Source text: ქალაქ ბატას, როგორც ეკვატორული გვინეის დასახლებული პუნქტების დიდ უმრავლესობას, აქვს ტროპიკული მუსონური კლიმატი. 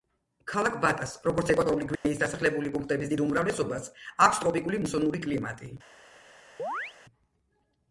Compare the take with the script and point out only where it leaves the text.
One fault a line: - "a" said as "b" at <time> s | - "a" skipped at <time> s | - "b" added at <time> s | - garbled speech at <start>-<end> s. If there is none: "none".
none